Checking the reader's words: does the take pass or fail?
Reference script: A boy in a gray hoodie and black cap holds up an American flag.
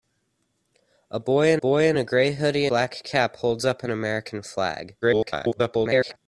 fail